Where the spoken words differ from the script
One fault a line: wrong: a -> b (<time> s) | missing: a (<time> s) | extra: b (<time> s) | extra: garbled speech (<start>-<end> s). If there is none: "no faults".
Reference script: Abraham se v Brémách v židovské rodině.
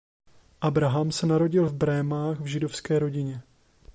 extra: narodil (1.2 s)